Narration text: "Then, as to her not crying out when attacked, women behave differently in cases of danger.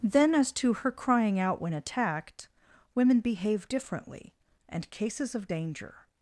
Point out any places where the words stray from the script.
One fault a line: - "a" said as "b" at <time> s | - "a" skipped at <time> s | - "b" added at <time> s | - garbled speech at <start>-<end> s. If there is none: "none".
- "not" skipped at 0.9 s
- "in" said as "and" at 4.7 s